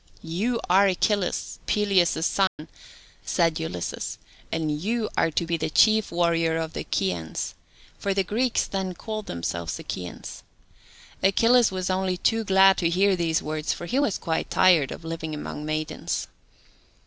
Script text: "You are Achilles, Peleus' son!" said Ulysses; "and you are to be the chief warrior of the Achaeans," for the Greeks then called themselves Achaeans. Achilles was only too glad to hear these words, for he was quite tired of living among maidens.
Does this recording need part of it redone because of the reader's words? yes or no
no